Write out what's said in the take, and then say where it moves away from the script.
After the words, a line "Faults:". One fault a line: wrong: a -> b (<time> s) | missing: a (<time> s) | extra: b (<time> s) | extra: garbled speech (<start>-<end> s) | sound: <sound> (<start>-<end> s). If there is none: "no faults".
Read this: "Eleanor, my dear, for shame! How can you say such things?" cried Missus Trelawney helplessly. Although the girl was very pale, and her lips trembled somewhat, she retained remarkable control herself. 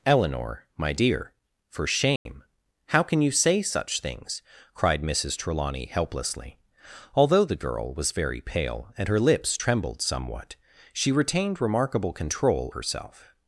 "Eleanor, my dear, for shame! How can you say such things?" cried Missus Trelawney helplessly. Although the girl was very pale, and her lips trembled somewhat, she retained remarkable control herself.
Faults:
sound: dropout (2.2-2.3 s)